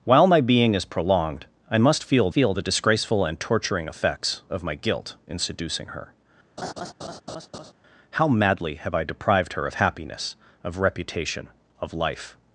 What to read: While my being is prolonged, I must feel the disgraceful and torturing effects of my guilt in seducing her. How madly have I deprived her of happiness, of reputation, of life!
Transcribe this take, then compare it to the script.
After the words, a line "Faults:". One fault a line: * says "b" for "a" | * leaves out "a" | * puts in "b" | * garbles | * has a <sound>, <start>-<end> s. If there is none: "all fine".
While my being is prolonged, I must feel feel the disgraceful and torturing effects of my guilt in seducing her. How madly have I deprived her of happiness, of reputation, of life!
Faults:
* puts in "feel"
* has a laugh, 6.6-7.7 s